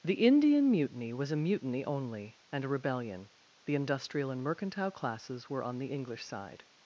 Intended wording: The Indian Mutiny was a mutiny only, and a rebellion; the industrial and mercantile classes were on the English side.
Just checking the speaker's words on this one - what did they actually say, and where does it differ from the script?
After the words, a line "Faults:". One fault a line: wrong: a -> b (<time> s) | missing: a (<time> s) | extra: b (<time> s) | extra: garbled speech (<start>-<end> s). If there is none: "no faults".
The Indian Mutiny was a mutiny only, and a rebellion; the industrial and mercantile classes were on the English side.
Faults:
no faults